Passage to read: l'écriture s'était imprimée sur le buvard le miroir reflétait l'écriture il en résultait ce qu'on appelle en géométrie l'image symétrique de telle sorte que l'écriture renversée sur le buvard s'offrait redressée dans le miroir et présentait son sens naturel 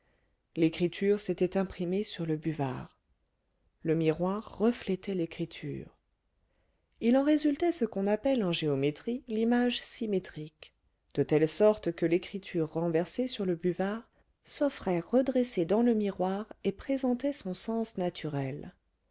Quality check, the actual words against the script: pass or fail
pass